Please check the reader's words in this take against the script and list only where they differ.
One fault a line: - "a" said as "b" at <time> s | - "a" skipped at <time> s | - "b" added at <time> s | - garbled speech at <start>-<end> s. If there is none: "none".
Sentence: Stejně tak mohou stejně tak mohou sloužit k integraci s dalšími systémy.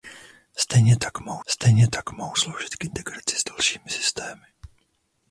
none